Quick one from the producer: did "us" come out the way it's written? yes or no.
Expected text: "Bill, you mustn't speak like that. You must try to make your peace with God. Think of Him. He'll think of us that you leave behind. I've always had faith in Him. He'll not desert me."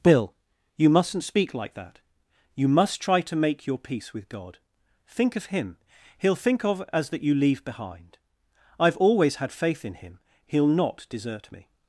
no